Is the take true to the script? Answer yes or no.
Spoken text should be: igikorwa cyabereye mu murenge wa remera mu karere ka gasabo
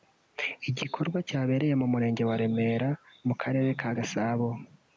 yes